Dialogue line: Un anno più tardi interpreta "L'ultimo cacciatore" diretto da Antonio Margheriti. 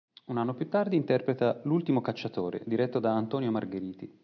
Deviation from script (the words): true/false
false